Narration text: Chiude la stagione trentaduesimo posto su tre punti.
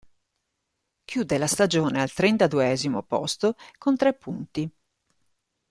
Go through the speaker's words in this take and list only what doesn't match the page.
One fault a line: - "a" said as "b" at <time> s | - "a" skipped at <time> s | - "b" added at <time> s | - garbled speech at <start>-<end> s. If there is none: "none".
- "al" added at 2.0 s
- "su" said as "con" at 3.8 s